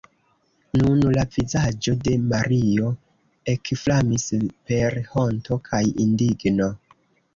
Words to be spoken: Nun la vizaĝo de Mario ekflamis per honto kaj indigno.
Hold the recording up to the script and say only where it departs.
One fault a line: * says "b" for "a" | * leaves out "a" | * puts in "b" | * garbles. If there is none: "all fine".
all fine